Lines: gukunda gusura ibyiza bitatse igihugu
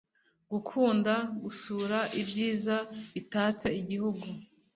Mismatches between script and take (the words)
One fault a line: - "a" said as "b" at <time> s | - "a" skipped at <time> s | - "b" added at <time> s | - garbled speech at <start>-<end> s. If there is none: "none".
none